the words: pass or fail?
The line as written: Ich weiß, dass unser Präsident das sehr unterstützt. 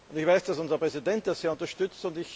pass